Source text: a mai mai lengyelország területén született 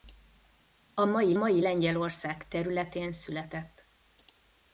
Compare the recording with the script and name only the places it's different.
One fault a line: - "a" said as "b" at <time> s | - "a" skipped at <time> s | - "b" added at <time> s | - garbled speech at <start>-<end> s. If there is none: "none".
none